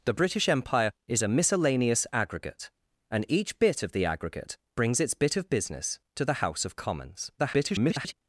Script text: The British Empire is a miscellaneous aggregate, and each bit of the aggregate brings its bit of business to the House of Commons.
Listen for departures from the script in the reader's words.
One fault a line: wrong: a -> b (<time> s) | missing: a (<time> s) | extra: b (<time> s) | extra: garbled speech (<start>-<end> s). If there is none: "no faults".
extra: garbled speech (7.4-8.1 s)